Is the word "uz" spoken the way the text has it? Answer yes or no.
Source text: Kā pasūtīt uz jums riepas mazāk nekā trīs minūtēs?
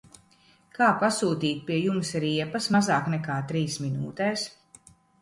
no